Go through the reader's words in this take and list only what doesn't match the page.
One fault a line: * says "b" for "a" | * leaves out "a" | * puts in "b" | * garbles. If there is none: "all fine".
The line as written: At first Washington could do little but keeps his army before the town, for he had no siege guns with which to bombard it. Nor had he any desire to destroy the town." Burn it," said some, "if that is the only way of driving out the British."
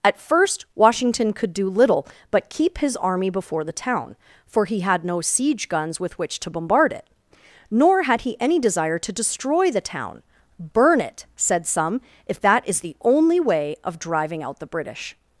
* says "keep" for "keeps"